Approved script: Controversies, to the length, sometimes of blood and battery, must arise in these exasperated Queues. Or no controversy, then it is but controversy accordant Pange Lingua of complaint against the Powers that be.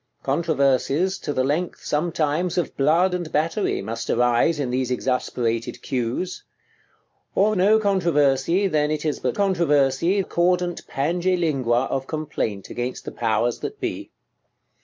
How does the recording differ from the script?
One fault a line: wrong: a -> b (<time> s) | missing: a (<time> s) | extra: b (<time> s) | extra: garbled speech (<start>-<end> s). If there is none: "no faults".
no faults